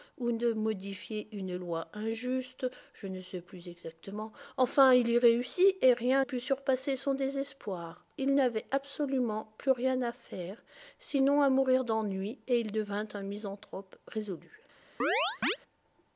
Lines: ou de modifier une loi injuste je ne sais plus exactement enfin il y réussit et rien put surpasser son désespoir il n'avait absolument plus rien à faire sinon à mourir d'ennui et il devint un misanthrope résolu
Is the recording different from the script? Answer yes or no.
no